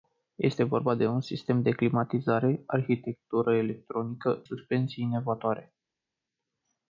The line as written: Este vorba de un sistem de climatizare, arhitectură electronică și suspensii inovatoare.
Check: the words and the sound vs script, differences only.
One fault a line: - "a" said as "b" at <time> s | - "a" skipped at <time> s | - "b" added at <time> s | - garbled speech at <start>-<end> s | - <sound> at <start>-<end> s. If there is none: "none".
- "și" skipped at 4.4 s